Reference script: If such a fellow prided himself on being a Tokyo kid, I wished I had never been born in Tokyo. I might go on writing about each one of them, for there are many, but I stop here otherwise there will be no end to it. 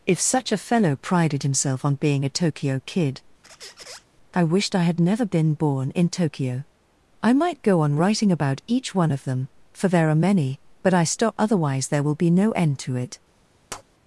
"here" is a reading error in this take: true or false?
true